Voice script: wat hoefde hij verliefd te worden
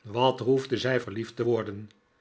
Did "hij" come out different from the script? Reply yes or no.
yes